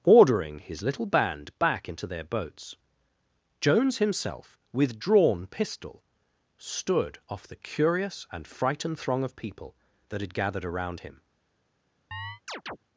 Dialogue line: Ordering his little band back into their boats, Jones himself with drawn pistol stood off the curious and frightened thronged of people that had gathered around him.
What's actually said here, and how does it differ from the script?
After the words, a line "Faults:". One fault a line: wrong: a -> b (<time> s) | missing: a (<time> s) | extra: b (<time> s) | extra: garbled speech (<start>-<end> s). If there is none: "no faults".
Ordering his little band back into their boats, Jones himself with drawn pistol stood off the curious and frightened throng of people that had gathered around him.
Faults:
wrong: thronged -> throng (9.0 s)